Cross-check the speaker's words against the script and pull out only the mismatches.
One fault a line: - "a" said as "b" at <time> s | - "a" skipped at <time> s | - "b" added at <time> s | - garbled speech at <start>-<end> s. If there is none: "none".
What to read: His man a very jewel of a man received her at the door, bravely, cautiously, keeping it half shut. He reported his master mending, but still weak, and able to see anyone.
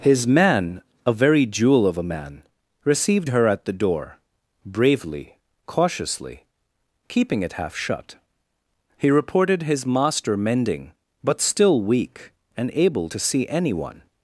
none